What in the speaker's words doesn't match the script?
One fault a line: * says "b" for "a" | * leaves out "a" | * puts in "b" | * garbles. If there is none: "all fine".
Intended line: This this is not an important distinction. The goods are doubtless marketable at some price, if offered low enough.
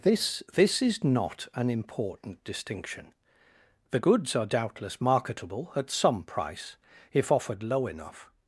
all fine